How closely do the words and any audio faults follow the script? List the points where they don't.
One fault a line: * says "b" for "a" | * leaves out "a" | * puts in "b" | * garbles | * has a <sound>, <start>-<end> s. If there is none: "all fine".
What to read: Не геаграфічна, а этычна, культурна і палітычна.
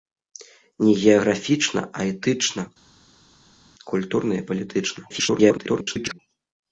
* garbles